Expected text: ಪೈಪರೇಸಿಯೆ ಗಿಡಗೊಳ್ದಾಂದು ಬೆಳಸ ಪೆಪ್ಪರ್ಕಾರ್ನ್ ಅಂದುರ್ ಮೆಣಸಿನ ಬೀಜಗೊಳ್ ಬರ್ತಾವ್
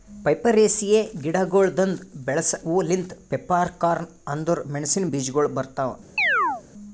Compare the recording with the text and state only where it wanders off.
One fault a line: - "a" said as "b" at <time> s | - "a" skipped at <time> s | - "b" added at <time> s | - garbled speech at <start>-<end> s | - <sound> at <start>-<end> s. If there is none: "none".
- "ಹೂ ಲಿಂತ್" added at 2.6 s
- chirp at 6.2-6.6 s